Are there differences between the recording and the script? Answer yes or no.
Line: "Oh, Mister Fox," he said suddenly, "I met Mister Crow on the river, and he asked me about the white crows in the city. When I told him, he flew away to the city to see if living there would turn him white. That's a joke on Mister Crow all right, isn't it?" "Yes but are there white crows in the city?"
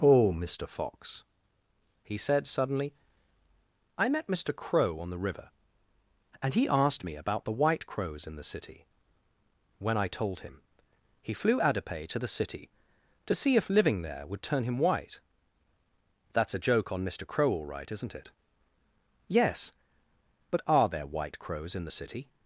yes